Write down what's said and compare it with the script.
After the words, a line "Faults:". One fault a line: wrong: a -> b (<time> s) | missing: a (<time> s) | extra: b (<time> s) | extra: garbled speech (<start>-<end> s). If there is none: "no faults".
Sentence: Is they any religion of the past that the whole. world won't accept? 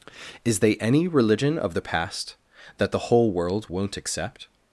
Is they any religion of the past that the whole. world won't accept?
Faults:
no faults